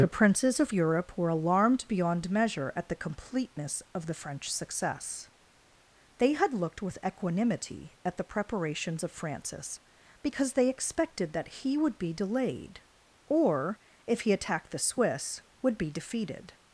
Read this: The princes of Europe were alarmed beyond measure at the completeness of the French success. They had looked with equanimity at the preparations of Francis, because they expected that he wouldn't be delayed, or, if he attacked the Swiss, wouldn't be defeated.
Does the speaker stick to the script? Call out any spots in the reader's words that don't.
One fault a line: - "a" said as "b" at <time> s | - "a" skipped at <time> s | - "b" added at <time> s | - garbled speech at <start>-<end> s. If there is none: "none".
- "wouldn't" said as "would" at 11.8 s
- "wouldn't" said as "would" at 15.6 s